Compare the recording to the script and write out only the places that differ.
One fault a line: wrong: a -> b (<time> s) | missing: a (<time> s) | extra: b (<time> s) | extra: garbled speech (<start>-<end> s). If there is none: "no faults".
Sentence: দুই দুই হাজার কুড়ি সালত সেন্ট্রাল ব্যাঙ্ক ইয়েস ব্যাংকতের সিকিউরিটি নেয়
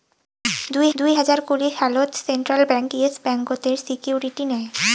no faults